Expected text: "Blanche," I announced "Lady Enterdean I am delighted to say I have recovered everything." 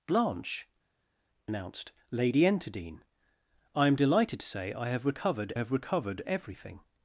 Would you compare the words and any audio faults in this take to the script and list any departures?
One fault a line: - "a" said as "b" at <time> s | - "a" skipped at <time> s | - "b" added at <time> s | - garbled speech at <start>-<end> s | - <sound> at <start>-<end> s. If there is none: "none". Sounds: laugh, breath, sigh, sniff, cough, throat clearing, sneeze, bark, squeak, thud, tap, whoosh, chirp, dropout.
- "I" skipped at 0.7 s
- "have recovered" added at 5.5 s